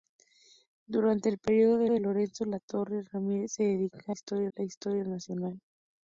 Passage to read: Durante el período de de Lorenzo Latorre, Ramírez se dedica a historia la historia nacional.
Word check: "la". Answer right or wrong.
right